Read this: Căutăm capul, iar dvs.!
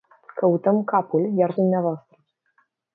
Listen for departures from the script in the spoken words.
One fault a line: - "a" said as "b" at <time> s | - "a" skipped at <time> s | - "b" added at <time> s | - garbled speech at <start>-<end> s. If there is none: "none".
none